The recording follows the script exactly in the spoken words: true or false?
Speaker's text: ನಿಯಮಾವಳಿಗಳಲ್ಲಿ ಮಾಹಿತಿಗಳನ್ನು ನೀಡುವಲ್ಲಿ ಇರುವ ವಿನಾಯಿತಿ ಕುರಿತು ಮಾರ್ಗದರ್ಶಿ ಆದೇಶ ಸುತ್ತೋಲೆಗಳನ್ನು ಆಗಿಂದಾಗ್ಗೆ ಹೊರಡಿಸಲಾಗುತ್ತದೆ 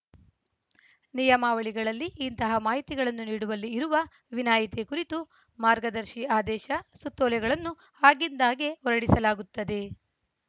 false